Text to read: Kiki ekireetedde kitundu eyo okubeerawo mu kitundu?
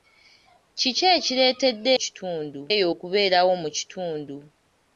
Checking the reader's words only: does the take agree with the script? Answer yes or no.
yes